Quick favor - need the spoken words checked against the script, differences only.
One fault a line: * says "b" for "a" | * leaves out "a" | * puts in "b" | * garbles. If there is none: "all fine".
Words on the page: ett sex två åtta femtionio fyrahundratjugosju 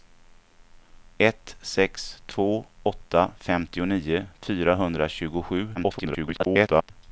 * garbles